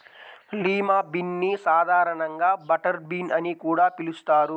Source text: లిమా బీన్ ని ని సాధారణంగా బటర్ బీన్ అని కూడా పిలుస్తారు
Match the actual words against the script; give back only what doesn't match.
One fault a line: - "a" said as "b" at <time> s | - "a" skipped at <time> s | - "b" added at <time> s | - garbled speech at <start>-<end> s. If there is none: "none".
- "ని" skipped at 1.5 s